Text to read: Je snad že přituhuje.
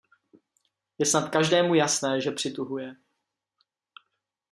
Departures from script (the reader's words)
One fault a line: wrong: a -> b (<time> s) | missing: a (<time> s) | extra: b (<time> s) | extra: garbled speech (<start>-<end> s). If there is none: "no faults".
extra: každému jasné (1.3 s)